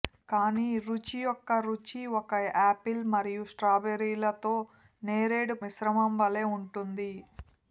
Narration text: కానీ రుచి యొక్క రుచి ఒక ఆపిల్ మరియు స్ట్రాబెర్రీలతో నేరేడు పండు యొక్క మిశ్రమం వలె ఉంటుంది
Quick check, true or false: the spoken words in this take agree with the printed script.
false